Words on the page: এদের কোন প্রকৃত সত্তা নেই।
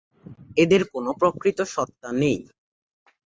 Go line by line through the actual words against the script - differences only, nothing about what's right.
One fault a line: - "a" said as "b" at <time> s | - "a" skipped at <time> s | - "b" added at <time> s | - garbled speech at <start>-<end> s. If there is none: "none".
none